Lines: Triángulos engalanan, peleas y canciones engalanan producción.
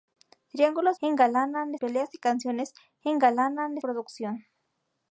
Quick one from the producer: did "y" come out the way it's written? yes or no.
yes